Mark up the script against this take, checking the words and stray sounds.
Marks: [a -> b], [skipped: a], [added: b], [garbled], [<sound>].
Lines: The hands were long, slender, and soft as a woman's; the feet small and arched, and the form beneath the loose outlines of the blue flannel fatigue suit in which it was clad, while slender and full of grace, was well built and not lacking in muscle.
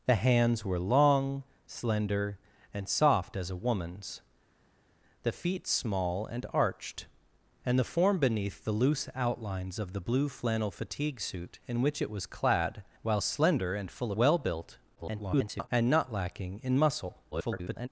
The hands were long, slender, and soft as a woman's; the feet small and arched, and the form beneath the loose outlines of the blue flannel fatigue suit in which it was clad, while slender and full [skipped: of grace, was] well built [garbled] and not lacking in muscle. [garbled]